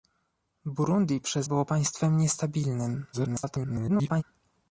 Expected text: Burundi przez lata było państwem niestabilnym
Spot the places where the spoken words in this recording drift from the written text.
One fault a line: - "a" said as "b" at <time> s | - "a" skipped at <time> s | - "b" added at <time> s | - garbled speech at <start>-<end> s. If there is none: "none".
- "lata" skipped at 1.5 s
- garbled speech at 3.1-4.2 s